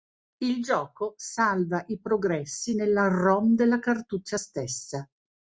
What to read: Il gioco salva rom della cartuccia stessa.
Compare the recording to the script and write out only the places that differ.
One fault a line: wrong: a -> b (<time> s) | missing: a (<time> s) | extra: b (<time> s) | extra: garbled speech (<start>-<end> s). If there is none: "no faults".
extra: i progressi nella (1.9 s)